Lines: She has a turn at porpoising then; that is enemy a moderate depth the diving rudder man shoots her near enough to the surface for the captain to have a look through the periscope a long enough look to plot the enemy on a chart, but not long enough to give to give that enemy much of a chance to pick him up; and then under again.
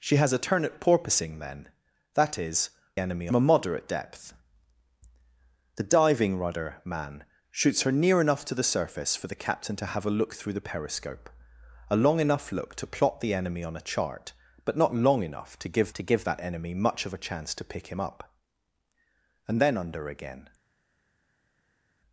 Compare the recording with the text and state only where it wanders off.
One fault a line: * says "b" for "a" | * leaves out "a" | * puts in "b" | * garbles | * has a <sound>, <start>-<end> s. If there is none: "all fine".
all fine